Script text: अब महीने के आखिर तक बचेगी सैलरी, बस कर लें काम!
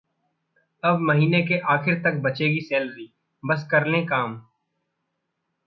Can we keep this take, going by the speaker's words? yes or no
yes